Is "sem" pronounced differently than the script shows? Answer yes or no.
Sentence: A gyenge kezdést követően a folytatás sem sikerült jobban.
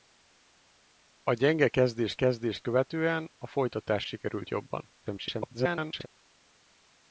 yes